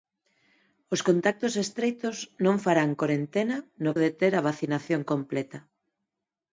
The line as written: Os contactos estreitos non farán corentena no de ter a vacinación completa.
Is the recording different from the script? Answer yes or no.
no